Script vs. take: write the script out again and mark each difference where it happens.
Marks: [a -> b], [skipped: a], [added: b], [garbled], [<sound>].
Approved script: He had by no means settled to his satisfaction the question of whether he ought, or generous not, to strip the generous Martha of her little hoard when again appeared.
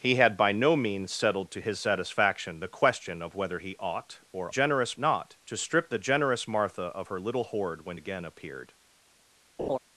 He had by no means settled to his satisfaction the question of whether he ought, or generous not, to strip the generous Martha of her little hoard when again appeared. [laugh]